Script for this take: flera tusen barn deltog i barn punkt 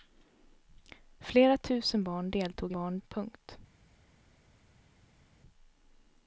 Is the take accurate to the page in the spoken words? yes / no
yes